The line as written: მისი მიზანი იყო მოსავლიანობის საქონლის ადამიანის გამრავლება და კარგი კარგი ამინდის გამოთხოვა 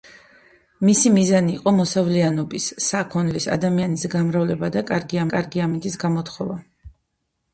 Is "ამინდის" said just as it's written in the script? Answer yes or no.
yes